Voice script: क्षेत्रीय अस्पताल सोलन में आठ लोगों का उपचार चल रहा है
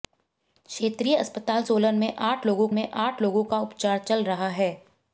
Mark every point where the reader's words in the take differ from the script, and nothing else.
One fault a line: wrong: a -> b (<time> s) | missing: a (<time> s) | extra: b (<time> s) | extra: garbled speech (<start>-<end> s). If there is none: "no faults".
extra: में आठ लोगों (2.7 s)